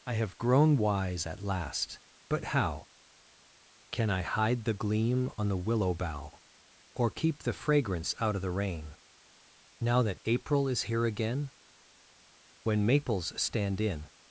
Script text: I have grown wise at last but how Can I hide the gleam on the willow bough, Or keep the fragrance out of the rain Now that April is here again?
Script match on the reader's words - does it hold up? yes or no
no